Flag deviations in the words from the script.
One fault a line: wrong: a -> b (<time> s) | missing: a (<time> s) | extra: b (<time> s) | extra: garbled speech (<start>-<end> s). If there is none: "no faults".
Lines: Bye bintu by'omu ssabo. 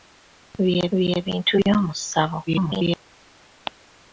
extra: bye (1.0 s)
extra: garbled speech (2.5-3.0 s)